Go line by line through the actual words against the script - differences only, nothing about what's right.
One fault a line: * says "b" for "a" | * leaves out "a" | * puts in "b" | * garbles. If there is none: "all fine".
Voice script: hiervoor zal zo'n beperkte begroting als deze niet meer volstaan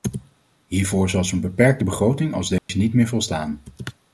all fine